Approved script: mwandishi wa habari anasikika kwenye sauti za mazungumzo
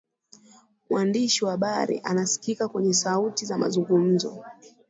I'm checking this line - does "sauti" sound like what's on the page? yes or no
yes